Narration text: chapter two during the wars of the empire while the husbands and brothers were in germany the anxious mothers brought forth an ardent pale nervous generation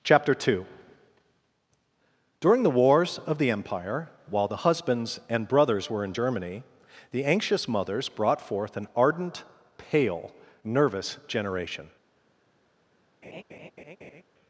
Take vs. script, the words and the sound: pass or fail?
fail